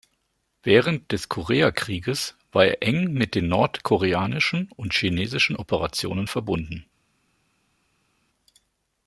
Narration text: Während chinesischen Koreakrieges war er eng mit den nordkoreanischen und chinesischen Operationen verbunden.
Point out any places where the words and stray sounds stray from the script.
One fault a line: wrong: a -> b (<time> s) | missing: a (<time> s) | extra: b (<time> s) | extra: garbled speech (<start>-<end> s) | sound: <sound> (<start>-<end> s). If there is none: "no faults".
wrong: chinesischen -> des (1.1 s)